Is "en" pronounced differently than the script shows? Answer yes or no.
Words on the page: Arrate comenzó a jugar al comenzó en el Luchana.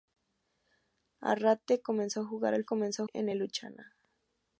no